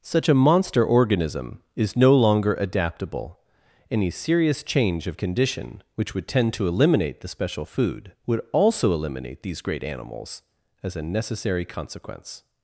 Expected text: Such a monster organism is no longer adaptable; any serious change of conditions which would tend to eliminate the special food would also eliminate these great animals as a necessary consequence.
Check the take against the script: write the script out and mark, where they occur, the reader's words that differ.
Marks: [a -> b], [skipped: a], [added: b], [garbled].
Such a monster organism is no longer adaptable; any serious change of [conditions -> condition] which would tend to eliminate the special food would also eliminate these great animals as a necessary consequence.